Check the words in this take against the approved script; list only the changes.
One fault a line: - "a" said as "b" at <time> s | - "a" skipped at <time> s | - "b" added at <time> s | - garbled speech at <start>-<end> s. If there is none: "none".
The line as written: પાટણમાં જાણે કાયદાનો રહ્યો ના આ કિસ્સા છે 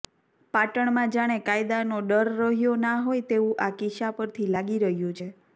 - "ડર" added at 2.0 s
- "હોય તેવું" added at 3.0 s
- "પરથી લાગી રહ્યું" added at 4.2 s